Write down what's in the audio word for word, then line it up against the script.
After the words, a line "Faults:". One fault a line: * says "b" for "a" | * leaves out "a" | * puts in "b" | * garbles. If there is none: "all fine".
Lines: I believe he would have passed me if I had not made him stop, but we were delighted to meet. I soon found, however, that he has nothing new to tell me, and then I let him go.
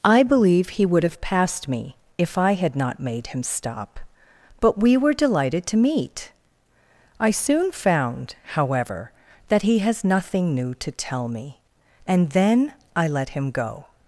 I believe he would have passed me if I had not made him stop, but we were delighted to meet. I soon found, however, that he has nothing new to tell me, and then I let him go.
Faults:
all fine